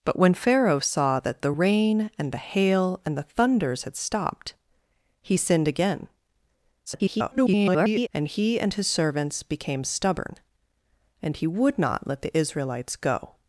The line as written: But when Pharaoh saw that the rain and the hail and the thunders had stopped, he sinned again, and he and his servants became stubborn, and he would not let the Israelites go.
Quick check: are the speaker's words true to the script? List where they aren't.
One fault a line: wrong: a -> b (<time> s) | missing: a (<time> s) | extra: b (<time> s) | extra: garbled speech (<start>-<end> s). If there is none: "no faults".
extra: garbled speech (6.9-8.1 s)